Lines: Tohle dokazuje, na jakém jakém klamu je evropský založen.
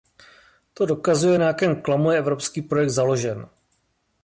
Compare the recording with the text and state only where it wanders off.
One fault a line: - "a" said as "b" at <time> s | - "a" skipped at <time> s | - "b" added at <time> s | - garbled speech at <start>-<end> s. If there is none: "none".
- "Tohle" said as "To" at 0.7 s
- "jakém" skipped at 1.8 s
- "projekt" added at 2.6 s